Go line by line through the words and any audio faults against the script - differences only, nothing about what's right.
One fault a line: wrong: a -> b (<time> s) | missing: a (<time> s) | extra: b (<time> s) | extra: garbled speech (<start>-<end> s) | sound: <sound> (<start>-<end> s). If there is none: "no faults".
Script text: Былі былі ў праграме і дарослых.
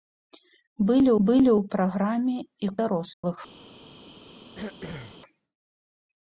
sound: dropout (3.1-3.2 s)
sound: throat clearing (4.5-5.2 s)